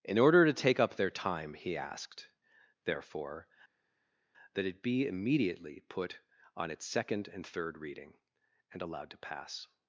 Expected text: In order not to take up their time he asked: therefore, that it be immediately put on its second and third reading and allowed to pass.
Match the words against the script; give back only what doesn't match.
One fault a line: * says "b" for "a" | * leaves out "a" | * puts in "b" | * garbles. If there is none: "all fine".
* leaves out "not"